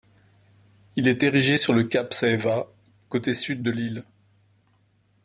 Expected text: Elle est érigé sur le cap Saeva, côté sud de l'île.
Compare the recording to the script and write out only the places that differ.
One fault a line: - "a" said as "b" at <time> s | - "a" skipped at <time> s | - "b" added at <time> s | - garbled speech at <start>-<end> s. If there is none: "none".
- "Elle" said as "Il" at 0.9 s